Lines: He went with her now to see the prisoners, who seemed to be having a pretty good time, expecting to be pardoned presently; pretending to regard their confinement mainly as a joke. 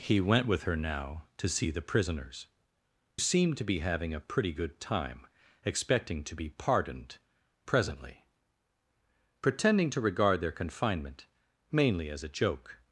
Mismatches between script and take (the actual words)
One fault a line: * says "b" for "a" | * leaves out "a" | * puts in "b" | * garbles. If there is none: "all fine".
* leaves out "who"